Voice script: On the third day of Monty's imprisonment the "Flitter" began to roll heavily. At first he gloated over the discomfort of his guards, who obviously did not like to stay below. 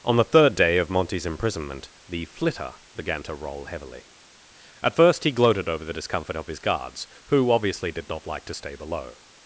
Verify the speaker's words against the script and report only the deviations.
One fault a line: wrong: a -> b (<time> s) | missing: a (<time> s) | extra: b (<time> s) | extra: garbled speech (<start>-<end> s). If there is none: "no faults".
no faults